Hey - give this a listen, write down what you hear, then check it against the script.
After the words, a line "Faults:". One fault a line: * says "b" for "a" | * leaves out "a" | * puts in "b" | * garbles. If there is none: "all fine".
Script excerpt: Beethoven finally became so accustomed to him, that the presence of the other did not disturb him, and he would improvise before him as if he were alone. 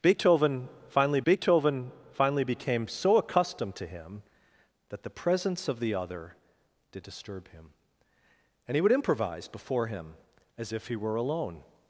Beethoven finally beethoven finally became so accustomed to him, that the presence of the other did disturb him, and he would improvise before him as if he were alone.
Faults:
* puts in "beethoven finally"
* leaves out "not"